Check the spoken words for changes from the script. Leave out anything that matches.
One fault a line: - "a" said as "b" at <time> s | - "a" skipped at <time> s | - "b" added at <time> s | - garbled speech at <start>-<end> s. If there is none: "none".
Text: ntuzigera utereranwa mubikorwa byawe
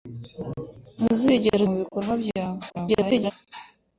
- "utereranwa" skipped at 1.6 s
- garbled speech at 2.7-3.3 s